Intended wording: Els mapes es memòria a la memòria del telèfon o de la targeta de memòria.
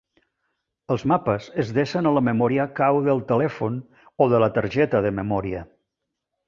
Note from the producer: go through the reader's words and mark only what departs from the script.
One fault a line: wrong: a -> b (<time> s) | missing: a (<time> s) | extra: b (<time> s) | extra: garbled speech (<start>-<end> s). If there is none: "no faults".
wrong: memòria -> desen (1.8 s)
extra: cau (2.8 s)